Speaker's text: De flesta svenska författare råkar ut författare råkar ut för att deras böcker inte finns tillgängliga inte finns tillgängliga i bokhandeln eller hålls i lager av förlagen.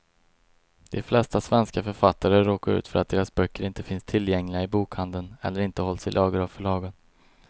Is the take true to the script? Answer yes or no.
no